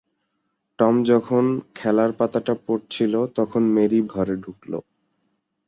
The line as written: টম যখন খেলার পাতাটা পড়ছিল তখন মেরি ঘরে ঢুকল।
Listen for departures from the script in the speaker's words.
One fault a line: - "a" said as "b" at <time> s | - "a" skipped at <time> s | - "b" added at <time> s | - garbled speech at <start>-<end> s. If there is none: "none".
none